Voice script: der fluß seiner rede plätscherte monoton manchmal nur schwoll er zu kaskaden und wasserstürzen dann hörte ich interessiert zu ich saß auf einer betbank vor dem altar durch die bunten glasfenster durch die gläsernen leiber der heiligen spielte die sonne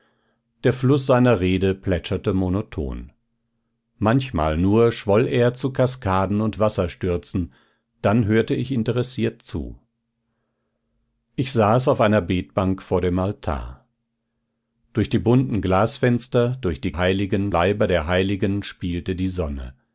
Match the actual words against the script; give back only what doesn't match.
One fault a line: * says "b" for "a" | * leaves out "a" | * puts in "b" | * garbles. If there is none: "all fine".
* says "heiligen" for "gläsernen"